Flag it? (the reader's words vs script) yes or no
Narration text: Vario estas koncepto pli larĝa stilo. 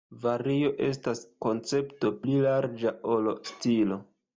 yes